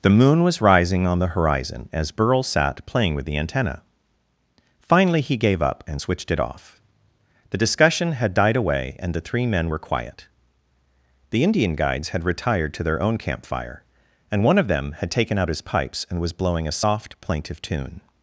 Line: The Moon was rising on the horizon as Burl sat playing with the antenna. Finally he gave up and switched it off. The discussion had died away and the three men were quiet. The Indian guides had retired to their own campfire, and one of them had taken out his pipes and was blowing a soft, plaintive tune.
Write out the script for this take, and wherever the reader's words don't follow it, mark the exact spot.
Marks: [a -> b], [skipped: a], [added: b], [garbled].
The Moon was rising on the horizon as Burl sat playing with the antenna. Finally he gave up and switched it off. The discussion had died away and the three men were quiet. The Indian guides had retired to their own campfire, and one of them had taken out his pipes and was blowing a soft, plaintive tune.